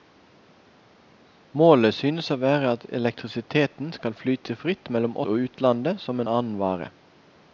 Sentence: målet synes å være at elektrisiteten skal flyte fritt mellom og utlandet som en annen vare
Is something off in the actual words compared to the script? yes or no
no